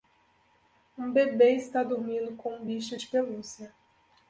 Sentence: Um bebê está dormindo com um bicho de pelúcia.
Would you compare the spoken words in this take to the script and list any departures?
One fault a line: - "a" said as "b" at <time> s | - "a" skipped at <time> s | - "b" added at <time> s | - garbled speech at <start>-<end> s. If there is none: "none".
none